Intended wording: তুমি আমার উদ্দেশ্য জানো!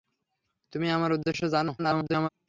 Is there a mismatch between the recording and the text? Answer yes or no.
yes